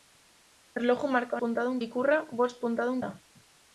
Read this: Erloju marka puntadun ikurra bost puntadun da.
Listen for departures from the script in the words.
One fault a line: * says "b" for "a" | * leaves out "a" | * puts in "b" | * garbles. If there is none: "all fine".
all fine